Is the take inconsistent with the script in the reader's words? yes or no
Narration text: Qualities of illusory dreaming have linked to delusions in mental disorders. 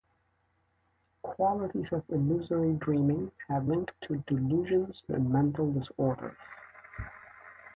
no